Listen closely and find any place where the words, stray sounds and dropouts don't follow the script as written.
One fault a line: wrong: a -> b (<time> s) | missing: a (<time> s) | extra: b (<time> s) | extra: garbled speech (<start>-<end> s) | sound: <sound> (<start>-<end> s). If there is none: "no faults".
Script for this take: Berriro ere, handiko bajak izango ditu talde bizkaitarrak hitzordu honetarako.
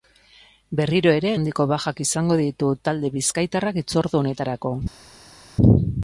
no faults